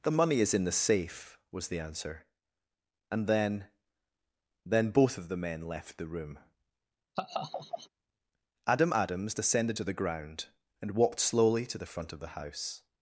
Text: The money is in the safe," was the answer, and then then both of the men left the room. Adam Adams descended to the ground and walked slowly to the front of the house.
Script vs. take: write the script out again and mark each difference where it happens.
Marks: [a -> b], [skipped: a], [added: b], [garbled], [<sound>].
The money is in the safe," was the answer, and then then both of the men left the room. [laugh] Adam Adams descended to the ground and walked slowly to the front of the house.